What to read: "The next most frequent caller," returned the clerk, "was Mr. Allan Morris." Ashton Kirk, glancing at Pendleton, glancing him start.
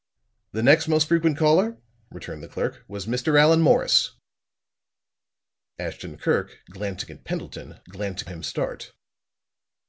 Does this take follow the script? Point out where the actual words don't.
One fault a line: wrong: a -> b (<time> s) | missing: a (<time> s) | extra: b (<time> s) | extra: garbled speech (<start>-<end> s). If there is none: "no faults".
no faults